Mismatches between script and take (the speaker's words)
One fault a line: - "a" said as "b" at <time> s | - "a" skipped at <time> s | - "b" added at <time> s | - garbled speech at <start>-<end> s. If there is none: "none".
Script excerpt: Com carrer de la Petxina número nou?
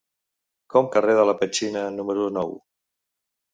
none